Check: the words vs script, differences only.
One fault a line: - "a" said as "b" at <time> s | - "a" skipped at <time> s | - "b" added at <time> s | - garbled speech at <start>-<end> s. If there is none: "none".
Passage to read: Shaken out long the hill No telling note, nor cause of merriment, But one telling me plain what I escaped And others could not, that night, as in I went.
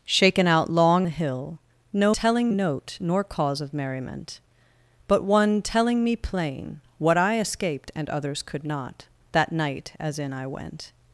none